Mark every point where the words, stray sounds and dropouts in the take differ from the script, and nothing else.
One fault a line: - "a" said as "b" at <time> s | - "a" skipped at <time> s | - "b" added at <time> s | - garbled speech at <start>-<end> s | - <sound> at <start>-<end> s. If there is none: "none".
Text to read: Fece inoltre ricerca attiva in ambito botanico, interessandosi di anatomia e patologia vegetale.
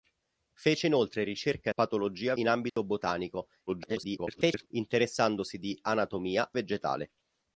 - "attiva" said as "patologia" at 1.7 s
- dropout at 2.7-2.8 s
- garbled speech at 3.7-4.7 s
- "e patologia" skipped at 6.5 s